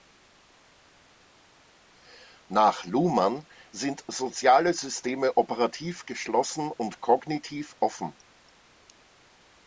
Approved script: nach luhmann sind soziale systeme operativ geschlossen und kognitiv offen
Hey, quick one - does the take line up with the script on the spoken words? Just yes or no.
yes